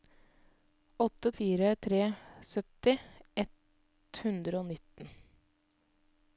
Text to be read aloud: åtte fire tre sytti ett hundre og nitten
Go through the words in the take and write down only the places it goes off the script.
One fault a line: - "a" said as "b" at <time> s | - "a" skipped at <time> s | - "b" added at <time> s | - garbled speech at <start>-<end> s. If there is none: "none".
none